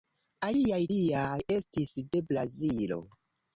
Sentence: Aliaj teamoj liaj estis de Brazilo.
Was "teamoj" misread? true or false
true